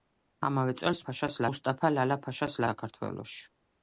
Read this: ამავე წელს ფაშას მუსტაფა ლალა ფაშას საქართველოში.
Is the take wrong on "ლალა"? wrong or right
right